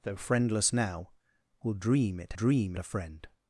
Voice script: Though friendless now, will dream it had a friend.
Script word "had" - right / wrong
wrong